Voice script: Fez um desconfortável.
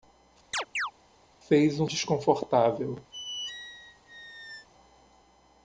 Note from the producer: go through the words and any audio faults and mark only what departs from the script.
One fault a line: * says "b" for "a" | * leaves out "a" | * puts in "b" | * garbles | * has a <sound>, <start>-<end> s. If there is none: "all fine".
* has a chirp, 0.5-0.9 s
* has a squeak, 3.1-4.7 s